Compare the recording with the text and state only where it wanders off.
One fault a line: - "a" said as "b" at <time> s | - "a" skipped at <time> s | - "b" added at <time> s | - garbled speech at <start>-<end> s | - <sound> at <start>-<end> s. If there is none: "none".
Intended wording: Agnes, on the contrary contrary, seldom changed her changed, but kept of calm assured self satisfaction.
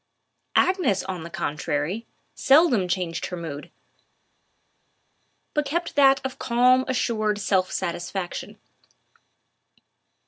- "contrary" skipped at 2.1 s
- "changed" said as "mood" at 3.4 s
- "that" added at 5.9 s